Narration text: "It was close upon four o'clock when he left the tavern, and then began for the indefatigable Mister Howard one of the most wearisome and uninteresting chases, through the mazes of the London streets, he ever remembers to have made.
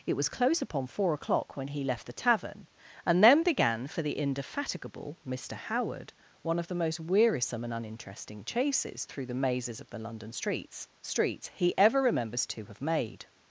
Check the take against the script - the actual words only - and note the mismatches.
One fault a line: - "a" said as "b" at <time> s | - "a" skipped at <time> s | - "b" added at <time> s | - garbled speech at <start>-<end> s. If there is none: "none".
- "streets" added at 11.0 s